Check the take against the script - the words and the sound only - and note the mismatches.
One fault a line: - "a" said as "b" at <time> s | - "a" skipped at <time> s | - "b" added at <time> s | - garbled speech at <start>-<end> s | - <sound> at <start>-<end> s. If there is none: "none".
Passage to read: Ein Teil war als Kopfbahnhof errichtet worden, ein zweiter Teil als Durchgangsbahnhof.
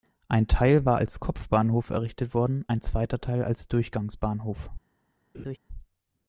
- laugh at 5.3-5.6 s